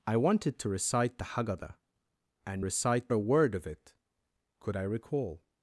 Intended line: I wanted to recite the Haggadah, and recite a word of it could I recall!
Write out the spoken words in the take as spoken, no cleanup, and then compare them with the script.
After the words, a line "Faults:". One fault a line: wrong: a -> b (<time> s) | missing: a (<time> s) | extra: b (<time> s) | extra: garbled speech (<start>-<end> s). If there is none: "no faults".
I wanted to recite the Haggadah, and recite a word of it could I recall!
Faults:
no faults